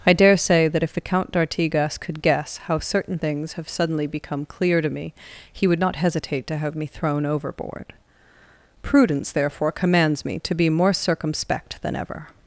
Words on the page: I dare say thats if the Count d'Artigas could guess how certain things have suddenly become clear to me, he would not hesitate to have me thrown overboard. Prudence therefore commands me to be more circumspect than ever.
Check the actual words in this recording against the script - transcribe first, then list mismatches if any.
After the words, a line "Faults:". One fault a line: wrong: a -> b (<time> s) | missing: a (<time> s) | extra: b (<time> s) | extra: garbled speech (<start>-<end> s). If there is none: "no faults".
I dare say that if the Count d'Artigas could guess how certain things have suddenly become clear to me, he would not hesitate to have me thrown overboard. Prudence therefore commands me to be more circumspect than ever.
Faults:
wrong: thats -> that (0.7 s)